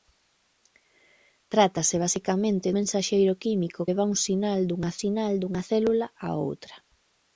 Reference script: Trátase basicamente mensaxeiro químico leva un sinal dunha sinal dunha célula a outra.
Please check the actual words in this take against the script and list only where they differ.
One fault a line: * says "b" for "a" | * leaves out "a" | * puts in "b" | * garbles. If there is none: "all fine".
all fine